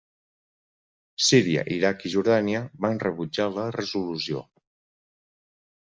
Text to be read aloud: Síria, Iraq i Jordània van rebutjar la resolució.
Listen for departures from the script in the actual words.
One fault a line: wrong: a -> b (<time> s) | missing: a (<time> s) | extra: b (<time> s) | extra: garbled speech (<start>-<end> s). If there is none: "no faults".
no faults